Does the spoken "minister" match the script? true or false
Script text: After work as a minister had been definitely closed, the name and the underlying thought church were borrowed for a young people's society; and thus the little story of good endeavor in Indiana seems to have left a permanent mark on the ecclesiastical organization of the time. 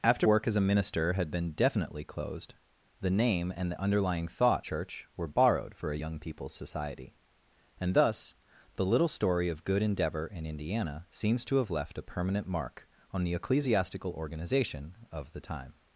true